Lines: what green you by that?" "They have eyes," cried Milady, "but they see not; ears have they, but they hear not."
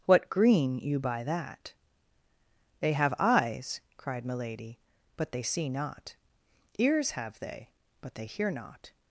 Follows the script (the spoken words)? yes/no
yes